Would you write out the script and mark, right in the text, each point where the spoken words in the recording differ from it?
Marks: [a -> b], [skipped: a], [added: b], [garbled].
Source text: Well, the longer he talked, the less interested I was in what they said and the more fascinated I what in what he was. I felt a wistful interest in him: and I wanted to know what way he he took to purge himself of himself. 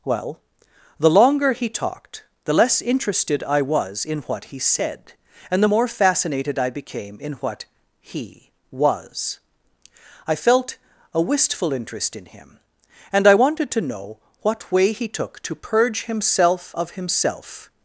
Well, the longer he talked, the less interested I was in what [they -> he] said and the more fascinated I [what -> became] in what he was. I felt a wistful interest in him: and I wanted to know what way he [skipped: he] took to purge himself of himself.